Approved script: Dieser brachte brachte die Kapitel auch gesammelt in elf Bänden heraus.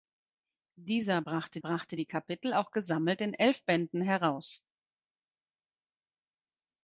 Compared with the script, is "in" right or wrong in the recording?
right